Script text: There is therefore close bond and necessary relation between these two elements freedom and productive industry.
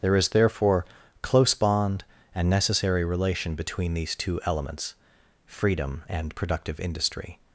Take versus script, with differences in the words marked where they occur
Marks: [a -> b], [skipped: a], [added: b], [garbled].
There is therefore close bond and necessary relation between these two elements freedom and productive industry.